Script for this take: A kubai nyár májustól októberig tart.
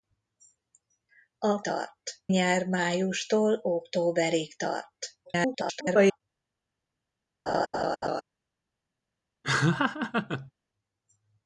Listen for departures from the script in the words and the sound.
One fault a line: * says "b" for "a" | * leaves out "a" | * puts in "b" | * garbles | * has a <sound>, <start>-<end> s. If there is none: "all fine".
* says "tart" for "kubai"
* garbles
* has a laugh, 7.5-8.2 s
* has a laugh, 9.4-10.5 s